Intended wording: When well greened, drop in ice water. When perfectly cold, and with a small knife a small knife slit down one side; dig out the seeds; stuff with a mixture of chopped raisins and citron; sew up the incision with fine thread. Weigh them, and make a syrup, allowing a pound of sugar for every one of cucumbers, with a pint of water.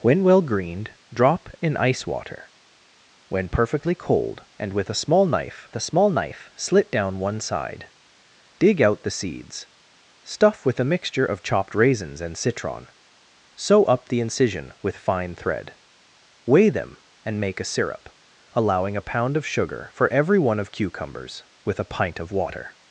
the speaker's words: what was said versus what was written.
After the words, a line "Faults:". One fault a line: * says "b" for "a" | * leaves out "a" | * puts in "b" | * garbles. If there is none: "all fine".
When well greened, drop in ice water. When perfectly cold, and with a small knife a small knife slit down one side; dig out the seeds; stuff with a mixture of chopped raisins and citron; sew up the incision with fine thread. Weigh them, and make a syrup, allowing a pound of sugar for every one of cucumbers, with a pint of water.
Faults:
all fine